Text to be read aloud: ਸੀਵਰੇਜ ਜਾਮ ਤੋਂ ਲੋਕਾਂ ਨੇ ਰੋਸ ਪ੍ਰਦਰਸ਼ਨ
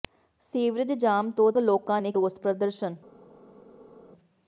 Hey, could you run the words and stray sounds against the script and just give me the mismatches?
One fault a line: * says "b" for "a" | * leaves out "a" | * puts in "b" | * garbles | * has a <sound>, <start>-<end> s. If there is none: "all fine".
all fine